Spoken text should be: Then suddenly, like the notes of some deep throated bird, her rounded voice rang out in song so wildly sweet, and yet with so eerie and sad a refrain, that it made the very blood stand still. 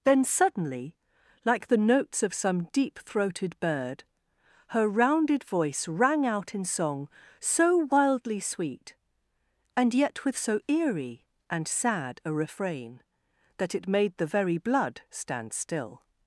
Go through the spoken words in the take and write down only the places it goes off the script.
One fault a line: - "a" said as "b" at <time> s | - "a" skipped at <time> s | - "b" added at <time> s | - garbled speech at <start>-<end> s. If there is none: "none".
none